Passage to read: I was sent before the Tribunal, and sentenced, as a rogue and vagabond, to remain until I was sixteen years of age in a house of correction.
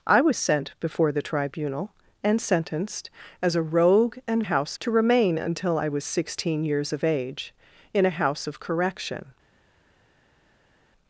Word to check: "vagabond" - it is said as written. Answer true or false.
false